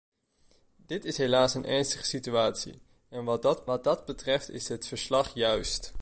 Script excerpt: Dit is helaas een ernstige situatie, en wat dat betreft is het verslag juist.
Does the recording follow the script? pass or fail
fail